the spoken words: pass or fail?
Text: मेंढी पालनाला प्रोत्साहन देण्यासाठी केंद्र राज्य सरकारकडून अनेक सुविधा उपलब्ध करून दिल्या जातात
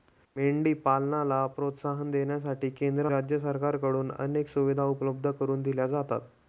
pass